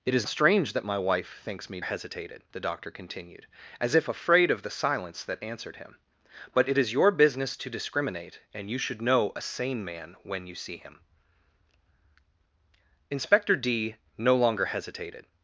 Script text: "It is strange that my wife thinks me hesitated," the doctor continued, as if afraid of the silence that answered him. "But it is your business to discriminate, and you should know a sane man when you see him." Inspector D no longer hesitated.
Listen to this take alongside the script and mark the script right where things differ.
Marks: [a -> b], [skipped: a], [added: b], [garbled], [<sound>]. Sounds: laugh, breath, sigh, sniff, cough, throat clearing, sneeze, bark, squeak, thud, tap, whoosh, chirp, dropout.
"It is strange that my wife thinks me hesitated," the doctor continued, as if afraid of the silence that answered him. "But it is your business to discriminate, and you should know a sane man when you see him." Inspector D no longer hesitated.